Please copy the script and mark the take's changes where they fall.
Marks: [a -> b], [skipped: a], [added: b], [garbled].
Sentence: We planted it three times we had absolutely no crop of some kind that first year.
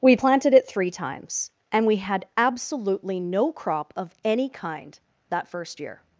We planted it three times [added: and] we had absolutely no crop of [some -> any] kind that first year.